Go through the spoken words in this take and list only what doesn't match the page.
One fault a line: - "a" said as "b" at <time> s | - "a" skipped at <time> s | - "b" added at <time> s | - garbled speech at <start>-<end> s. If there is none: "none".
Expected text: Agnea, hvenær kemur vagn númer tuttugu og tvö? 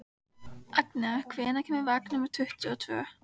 none